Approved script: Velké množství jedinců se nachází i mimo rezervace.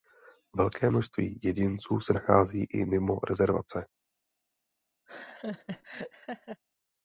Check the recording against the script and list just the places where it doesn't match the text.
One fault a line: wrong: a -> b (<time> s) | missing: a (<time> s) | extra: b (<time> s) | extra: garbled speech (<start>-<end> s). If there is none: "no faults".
no faults